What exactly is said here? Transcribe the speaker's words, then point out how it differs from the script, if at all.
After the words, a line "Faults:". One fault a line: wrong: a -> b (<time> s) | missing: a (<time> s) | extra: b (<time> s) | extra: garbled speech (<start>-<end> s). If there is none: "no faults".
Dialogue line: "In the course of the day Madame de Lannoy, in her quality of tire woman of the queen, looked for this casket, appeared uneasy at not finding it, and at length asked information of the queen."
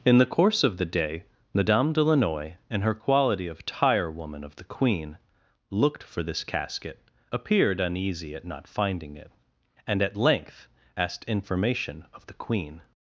"In the course of the day Madame de Lannoy, in her quality of tire woman of the queen, looked for this casket, appeared uneasy at not finding it, and at length asked information of the queen."
Faults:
no faults